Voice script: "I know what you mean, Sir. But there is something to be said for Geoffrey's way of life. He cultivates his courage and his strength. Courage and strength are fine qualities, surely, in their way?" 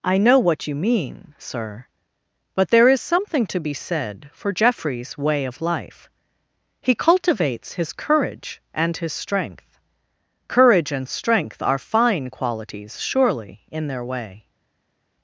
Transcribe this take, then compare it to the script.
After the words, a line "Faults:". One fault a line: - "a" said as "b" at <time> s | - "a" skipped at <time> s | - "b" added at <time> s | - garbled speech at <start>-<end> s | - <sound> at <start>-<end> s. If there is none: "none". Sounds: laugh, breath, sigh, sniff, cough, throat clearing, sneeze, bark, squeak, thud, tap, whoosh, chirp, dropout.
"I know what you mean, Sir. But there is something to be said for Geoffrey's way of life. He cultivates his courage and his strength. Courage and strength are fine qualities, surely, in their way?"
Faults:
none